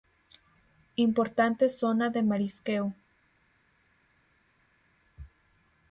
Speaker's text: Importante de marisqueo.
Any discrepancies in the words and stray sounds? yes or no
yes